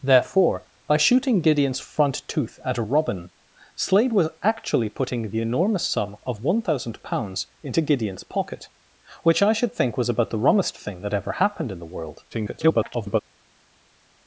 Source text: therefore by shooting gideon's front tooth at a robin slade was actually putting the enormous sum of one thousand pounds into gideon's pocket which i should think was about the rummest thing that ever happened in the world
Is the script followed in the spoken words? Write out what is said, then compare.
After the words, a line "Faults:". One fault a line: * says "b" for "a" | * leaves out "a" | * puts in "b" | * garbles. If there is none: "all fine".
therefore by shooting gideon's front tooth at a robin slade was actually putting the enormous sum of one thousand pounds into gideon's pocket which i should think was about the rummest thing that ever happened in the world [garbled]
Faults:
* garbles